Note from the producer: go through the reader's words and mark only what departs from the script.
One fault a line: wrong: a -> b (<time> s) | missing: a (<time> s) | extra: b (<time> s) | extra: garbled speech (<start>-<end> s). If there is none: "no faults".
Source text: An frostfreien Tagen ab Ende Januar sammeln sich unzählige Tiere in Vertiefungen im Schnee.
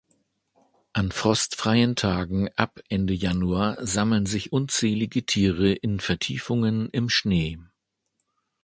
no faults